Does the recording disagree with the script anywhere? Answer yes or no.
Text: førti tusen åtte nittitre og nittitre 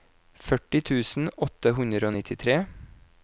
yes